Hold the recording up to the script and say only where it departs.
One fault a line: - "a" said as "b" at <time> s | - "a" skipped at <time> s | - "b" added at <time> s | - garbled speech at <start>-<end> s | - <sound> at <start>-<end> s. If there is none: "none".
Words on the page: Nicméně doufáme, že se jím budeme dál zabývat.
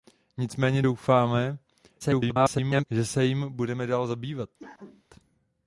- garbled speech at 2.0-2.9 s
- cough at 4.6-5.0 s